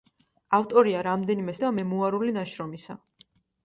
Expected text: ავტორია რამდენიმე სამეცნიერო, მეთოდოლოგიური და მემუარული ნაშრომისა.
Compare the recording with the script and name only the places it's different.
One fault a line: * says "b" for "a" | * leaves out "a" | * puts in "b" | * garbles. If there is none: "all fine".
* leaves out "სამეცნიერო მეთოდოლოგიური"